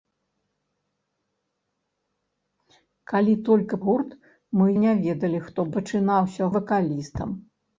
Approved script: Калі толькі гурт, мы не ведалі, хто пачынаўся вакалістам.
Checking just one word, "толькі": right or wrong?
right